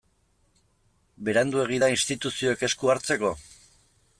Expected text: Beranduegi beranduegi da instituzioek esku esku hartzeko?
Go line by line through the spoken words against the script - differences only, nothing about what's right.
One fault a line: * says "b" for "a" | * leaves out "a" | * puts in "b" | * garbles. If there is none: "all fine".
* leaves out "beranduegi"
* leaves out "esku"